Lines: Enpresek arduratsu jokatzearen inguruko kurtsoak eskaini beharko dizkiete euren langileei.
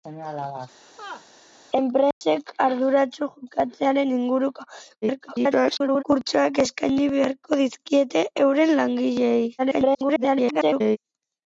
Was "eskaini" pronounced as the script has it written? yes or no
yes